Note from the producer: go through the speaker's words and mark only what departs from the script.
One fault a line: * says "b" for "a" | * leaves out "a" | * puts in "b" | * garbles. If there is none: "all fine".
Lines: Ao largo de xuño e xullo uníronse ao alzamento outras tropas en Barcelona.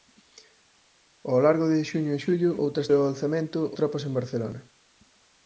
* says "outras" for "uníronse"
* leaves out "outras"